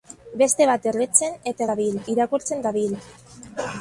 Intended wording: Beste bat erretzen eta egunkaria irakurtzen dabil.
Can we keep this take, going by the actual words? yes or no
no